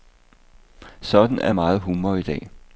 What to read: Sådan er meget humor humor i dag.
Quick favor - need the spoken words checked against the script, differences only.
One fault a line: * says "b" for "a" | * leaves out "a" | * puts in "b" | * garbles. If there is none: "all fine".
* leaves out "humor"